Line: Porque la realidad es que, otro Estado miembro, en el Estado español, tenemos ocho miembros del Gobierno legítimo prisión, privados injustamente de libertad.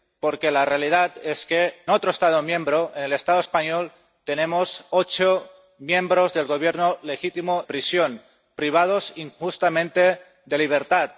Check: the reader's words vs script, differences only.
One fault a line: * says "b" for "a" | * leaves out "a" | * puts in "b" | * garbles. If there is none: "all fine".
all fine